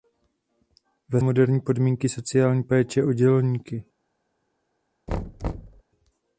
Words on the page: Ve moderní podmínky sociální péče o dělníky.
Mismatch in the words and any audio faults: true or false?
true